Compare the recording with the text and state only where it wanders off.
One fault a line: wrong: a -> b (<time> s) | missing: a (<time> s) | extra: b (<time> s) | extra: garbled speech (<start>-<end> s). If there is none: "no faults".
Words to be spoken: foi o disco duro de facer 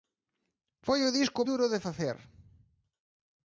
no faults